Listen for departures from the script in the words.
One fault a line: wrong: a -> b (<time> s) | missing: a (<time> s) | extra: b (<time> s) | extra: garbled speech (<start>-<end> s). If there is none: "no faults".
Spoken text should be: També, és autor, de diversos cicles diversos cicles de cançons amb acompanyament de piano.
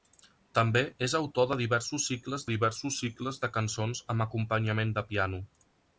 no faults